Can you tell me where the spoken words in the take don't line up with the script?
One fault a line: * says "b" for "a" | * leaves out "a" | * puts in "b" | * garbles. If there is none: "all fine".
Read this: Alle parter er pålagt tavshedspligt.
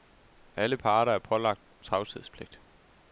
all fine